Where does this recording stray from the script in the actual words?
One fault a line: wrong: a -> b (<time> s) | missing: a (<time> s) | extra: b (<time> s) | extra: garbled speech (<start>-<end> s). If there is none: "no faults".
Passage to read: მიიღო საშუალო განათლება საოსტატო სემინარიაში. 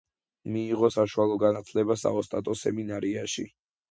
no faults